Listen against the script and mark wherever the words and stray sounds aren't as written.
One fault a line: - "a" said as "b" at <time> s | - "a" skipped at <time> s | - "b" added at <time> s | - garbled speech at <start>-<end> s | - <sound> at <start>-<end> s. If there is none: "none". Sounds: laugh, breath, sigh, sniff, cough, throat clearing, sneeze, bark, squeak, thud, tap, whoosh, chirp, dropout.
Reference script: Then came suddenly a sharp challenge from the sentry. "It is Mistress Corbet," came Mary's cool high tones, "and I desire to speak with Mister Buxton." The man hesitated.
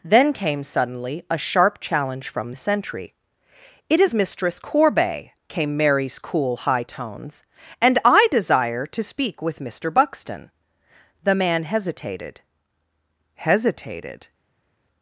- "hesitated" added at 13.3 s